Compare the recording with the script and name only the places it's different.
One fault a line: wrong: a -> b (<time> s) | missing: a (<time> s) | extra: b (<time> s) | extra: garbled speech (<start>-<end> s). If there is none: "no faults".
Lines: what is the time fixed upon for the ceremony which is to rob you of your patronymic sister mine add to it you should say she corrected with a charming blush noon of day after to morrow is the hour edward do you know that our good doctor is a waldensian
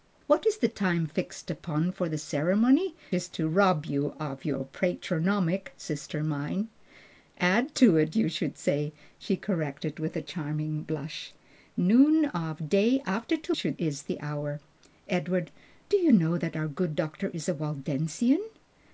missing: which (3.0 s)
wrong: morrow -> should (13.5 s)